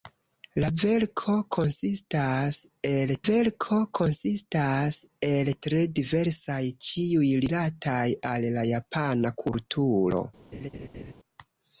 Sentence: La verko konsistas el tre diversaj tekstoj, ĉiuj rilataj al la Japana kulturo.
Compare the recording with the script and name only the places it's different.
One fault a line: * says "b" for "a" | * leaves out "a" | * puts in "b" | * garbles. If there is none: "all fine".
* puts in "verko konsistas el"
* leaves out "tekstoj"